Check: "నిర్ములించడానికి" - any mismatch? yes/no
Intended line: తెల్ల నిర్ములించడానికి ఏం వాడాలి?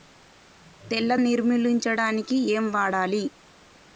no